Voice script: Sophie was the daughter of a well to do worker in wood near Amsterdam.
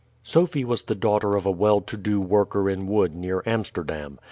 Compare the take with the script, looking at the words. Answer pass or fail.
pass